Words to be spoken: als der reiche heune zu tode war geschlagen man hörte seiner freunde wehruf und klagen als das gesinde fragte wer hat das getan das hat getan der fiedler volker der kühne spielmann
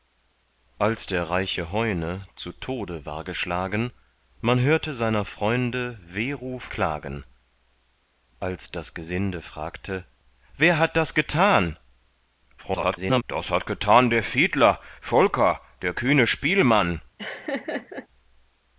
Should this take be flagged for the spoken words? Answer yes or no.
yes